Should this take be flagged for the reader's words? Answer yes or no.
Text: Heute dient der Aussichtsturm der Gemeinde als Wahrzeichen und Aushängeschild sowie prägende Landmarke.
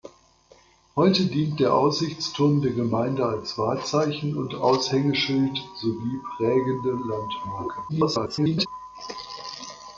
yes